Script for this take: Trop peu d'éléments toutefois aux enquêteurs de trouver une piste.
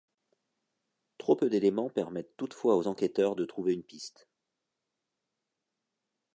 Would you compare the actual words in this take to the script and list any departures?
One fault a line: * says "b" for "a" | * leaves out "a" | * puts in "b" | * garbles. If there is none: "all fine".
* puts in "permettent"